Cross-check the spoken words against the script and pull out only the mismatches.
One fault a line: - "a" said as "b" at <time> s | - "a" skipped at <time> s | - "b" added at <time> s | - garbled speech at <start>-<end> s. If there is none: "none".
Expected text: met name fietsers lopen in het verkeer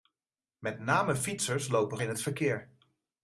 none